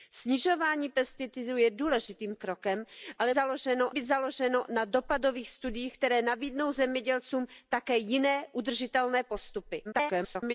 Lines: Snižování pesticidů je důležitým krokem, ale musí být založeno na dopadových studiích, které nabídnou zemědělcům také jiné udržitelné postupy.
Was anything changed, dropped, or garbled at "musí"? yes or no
yes